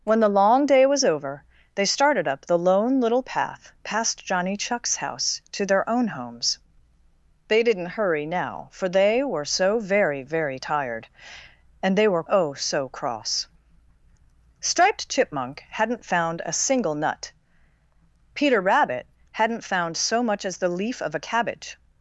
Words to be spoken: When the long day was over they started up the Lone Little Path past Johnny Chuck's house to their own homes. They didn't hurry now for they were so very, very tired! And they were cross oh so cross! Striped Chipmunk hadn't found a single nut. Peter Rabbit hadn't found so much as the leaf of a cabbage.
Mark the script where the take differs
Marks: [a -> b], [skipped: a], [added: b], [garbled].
When the long day was over they started up the Lone Little Path past Johnny Chuck's house to their own homes. They didn't hurry now for they were so very, very tired! And they were [skipped: cross] oh so cross! Striped Chipmunk hadn't found a single nut. Peter Rabbit hadn't found so much as the leaf of a cabbage.